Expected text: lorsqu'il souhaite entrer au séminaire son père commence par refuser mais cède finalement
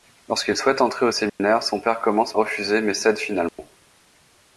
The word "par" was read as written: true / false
false